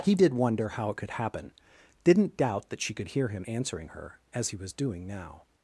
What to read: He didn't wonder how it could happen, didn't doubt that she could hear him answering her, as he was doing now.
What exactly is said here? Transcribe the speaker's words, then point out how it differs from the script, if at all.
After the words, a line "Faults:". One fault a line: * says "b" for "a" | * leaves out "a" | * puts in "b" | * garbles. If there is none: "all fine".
He did wonder how it could happen, didn't doubt that she could hear him answering her, as he was doing now.
Faults:
* says "did" for "didn't"